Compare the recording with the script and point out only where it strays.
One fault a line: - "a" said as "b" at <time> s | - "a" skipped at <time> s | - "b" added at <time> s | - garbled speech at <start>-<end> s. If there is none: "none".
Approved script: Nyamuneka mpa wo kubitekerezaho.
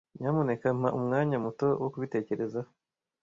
- "umwanya muto" added at 1.0 s